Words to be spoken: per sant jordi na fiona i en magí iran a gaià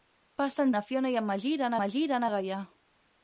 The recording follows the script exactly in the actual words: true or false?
false